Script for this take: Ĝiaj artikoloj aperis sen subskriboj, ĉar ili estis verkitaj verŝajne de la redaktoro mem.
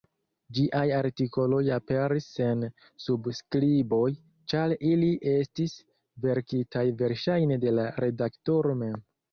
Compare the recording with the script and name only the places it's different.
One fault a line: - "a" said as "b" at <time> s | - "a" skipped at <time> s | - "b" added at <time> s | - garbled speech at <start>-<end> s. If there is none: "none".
none